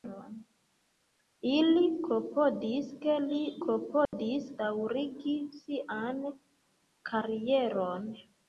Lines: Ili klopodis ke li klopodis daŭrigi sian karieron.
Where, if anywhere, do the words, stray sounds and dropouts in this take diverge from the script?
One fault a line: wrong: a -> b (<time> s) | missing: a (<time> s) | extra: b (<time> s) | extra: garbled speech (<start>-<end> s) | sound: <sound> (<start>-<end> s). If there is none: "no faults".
sound: dropout (4.1-4.1 s)